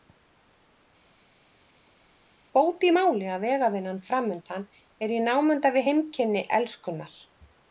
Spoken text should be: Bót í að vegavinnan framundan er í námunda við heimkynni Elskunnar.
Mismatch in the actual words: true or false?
true